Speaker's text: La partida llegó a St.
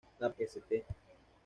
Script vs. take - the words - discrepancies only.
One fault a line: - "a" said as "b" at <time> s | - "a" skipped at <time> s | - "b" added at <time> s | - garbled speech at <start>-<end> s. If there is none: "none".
- "partida llegó a" skipped at 0.3 s